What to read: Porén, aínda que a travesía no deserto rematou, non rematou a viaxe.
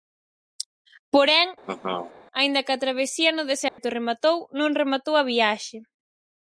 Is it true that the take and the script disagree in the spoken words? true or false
false